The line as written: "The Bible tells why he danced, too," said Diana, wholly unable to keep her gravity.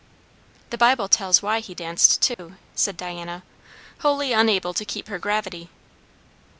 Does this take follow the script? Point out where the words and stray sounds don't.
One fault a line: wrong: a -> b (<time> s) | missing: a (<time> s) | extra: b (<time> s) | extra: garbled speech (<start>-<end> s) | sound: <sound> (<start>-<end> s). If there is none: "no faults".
sound: dropout (2.3-2.4 s)